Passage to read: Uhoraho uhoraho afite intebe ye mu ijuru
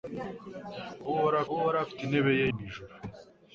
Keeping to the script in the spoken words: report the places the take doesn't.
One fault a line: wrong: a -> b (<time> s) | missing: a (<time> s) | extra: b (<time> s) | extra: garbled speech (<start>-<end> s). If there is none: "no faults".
no faults